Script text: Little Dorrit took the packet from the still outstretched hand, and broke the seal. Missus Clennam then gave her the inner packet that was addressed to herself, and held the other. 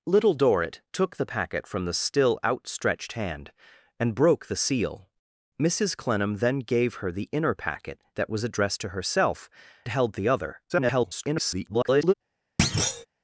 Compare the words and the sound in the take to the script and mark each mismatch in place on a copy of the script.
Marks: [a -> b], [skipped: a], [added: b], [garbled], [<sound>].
Little Dorrit took the packet from the still outstretched hand, and broke the seal. Missus Clennam then gave her the inner packet that was addressed to herself, [skipped: and] held the other. [garbled] [thud]